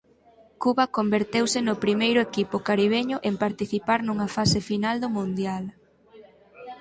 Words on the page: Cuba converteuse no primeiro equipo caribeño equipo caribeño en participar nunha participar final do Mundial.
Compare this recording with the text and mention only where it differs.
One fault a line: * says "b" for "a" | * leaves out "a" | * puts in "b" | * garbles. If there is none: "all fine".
* leaves out "equipo caribeño"
* says "fase" for "participar"